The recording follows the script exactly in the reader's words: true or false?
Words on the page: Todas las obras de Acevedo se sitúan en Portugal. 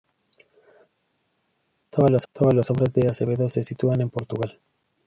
false